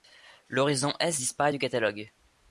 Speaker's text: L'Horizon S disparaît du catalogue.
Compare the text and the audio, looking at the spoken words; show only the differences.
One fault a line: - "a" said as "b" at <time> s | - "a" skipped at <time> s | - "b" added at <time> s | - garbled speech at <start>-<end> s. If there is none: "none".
none